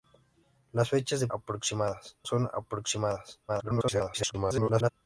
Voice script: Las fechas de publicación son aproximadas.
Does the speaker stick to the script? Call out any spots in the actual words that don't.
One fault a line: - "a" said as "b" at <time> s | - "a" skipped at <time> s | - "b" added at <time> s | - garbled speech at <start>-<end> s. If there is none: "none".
- "publicación" said as "aproximadas" at 1.3 s
- garbled speech at 3.5-4.9 s